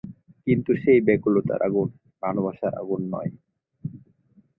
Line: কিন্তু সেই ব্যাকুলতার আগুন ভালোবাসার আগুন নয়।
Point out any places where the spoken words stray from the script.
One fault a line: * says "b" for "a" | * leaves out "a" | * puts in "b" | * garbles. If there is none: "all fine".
all fine